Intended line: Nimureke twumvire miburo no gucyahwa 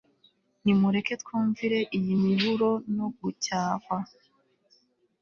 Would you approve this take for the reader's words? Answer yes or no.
no